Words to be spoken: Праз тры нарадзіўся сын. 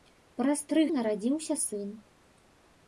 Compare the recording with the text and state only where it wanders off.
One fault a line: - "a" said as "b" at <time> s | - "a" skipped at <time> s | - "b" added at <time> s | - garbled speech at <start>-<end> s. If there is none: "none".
none